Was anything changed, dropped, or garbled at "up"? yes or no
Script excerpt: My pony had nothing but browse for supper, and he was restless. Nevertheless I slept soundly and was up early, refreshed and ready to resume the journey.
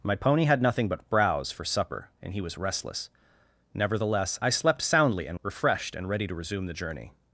yes